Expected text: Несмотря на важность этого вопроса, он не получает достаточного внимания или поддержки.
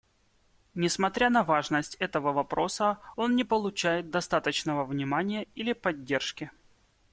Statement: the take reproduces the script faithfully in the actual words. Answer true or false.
true